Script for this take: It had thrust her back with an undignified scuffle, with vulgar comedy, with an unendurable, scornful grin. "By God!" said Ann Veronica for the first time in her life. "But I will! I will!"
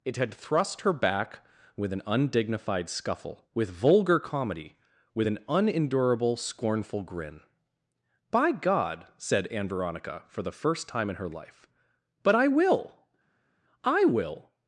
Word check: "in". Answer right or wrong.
right